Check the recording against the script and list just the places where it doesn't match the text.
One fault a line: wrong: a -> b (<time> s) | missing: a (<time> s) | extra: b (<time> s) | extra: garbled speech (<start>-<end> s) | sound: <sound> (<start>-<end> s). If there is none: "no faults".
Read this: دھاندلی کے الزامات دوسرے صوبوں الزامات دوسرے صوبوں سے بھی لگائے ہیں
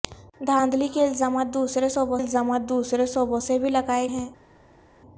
no faults